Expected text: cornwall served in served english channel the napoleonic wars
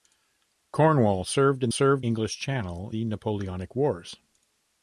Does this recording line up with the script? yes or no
yes